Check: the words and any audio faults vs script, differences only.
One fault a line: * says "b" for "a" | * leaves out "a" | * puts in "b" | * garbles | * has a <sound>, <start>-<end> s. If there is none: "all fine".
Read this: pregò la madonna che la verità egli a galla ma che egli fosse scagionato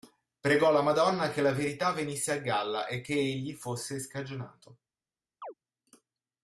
* says "venisse" for "egli"
* says "e" for "ma"
* has a chirp, 5.4-5.5 s